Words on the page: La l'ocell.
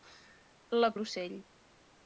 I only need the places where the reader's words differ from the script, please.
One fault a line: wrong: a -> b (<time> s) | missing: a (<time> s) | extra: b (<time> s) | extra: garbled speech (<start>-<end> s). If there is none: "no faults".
no faults